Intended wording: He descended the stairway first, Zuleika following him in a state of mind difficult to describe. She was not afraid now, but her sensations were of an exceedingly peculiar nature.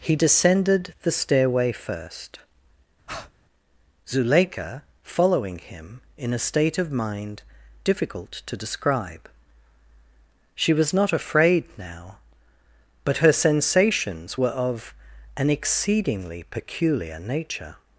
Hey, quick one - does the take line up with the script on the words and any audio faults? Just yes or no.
no